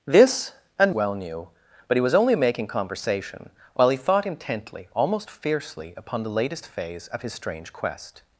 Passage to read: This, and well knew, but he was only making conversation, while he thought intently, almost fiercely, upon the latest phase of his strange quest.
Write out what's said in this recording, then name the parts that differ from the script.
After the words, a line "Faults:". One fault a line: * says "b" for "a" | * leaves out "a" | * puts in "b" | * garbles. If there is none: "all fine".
This, and well knew, but he was only making conversation, while he thought intently, almost fiercely, upon the latest phase of his strange quest.
Faults:
all fine